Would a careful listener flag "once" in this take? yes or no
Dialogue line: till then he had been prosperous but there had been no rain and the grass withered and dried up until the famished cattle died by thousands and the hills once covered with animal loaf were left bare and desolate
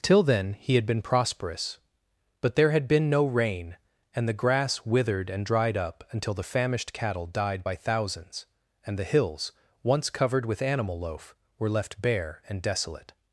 no